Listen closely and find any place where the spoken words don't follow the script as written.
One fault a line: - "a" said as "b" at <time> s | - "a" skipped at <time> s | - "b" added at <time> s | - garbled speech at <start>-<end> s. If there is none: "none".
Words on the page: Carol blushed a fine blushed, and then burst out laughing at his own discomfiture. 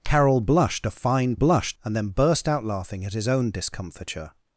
none